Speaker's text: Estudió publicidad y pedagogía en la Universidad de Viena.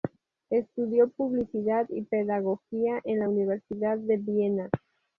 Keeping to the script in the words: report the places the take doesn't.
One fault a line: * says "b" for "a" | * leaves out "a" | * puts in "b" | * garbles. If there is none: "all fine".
all fine